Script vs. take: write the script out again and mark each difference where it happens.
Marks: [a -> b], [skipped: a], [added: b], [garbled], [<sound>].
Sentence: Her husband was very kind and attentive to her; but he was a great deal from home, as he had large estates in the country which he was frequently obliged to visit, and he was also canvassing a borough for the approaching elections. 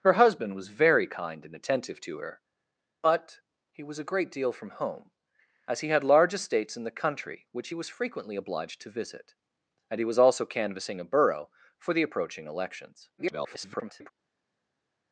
Her husband was very kind and attentive to her; but he was a great deal from home, as he had large estates in the country which he was frequently obliged to visit, and he was also canvassing a borough for the approaching elections. [garbled]